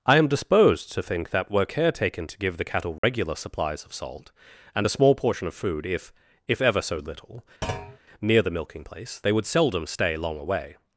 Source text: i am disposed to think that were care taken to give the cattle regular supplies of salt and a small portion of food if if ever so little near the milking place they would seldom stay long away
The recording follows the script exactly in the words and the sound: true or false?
false